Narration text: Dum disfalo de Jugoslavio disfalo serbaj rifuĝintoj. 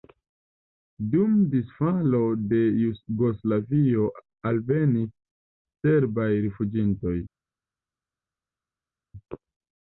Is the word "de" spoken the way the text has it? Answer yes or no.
yes